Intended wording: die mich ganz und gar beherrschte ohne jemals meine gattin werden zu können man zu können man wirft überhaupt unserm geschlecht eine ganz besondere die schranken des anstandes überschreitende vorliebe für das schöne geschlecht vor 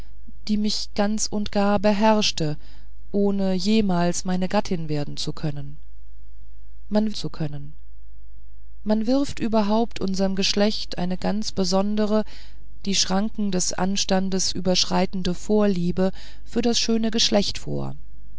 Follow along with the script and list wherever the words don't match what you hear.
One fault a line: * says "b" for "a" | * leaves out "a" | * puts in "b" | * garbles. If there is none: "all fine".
all fine